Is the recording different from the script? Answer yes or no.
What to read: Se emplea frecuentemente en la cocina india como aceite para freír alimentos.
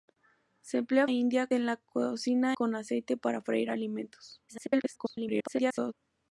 yes